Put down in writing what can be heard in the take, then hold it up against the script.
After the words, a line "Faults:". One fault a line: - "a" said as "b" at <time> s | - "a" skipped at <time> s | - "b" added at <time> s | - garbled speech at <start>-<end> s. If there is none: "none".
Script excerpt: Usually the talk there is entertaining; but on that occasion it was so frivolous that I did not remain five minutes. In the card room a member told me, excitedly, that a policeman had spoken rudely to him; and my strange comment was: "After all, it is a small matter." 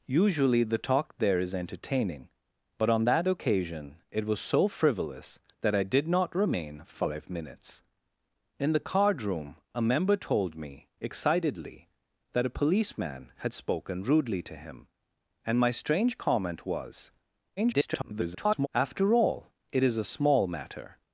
Usually the talk there is entertaining; but on that occasion it was so frivolous that I did not remain five minutes. In the card room a member told me, excitedly, that a policeman had spoken rudely to him; and my strange comment was: [garbled] "After all, it is a small matter."
Faults:
- garbled speech at 17.6-18.7 s